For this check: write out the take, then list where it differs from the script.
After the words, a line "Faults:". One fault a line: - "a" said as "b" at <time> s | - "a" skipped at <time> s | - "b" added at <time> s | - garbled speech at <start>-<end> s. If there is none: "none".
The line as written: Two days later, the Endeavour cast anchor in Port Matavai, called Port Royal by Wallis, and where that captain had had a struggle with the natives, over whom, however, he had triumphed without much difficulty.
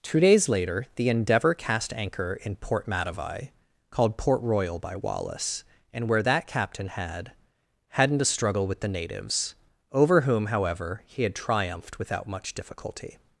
Two days later, the Endeavour cast anchor in Port Matavai, called Port Royal by Wallis, and where that captain had hadn't a struggle with the natives, over whom, however, he had triumphed without much difficulty.
Faults:
- "had" said as "hadn't" at 7.9 s